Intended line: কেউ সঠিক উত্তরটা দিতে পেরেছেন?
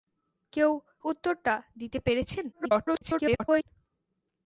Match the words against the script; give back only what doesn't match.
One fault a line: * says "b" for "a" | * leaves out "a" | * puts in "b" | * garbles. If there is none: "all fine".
* leaves out "সঠিক"
* garbles